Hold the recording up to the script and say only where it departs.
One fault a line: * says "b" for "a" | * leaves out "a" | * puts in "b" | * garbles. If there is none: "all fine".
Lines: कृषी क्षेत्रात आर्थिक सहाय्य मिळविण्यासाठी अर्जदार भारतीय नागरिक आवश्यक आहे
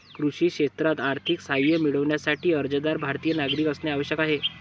* puts in "असणे"